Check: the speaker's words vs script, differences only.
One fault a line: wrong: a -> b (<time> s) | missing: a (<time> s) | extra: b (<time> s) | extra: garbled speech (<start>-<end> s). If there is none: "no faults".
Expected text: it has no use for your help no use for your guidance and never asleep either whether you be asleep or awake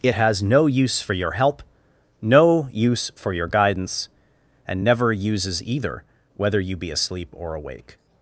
wrong: asleep -> uses (5.1 s)